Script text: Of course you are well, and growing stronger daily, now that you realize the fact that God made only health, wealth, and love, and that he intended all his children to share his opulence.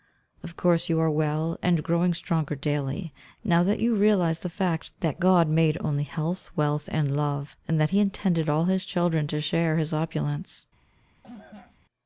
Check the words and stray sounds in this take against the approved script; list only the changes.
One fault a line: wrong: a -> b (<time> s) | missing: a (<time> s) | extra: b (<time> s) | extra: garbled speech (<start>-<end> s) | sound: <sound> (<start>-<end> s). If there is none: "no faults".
sound: cough (11.2-11.8 s)